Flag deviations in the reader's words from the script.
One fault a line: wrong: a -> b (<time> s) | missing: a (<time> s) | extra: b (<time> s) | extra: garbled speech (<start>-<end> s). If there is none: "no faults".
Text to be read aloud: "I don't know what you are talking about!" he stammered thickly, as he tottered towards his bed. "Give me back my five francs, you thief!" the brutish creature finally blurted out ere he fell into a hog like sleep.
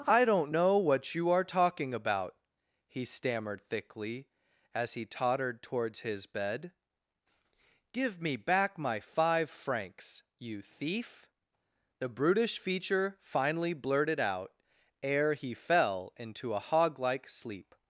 wrong: creature -> feature (12.6 s)